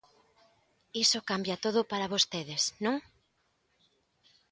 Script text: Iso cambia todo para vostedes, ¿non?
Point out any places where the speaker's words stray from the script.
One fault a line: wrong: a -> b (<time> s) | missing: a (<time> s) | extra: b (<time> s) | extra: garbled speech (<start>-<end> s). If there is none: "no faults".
no faults